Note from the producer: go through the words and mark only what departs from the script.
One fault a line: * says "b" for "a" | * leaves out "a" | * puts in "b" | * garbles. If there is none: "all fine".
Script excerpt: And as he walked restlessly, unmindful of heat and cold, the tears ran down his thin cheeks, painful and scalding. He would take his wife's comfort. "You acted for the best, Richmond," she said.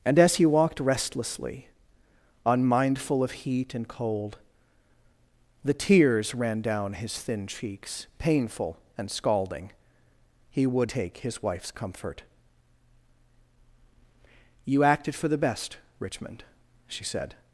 all fine